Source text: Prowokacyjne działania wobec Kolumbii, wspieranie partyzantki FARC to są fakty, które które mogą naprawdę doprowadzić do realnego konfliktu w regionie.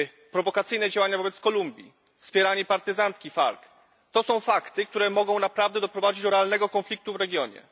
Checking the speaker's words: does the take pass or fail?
fail